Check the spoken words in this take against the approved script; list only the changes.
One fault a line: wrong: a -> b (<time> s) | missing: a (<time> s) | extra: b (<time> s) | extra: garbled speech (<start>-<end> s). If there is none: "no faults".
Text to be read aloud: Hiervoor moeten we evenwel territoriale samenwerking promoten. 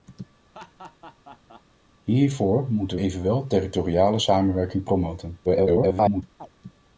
missing: we (3.0 s)
extra: garbled speech (5.4-6.2 s)